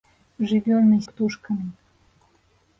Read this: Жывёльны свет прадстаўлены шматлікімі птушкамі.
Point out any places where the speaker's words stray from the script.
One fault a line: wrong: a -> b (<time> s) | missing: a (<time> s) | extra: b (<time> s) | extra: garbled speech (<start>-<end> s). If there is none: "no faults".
missing: свет прадстаўлены шматлікімі (1.0 s)